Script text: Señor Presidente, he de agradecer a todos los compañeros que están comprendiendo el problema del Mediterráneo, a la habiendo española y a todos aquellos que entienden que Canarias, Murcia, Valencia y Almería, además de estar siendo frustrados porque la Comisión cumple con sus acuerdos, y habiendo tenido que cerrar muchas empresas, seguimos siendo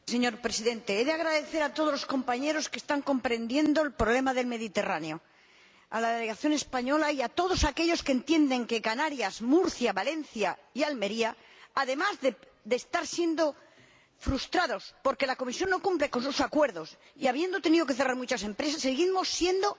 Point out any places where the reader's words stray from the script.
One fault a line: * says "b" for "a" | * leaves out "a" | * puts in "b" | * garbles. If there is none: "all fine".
* says "delegación" for "habiendo"
* puts in "no"